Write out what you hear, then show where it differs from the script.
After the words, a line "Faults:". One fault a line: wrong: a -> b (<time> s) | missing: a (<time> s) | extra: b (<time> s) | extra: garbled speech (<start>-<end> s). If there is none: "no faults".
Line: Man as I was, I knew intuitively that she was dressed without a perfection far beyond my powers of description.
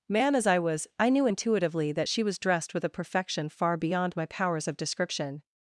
Man as I was, I knew intuitively that she was dressed with a perfection far beyond my powers of description.
Faults:
wrong: without -> with (2.7 s)